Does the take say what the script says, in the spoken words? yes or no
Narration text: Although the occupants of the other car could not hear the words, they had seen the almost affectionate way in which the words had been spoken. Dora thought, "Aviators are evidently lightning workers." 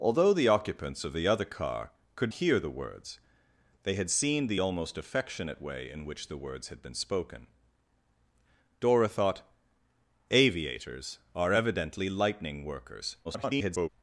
no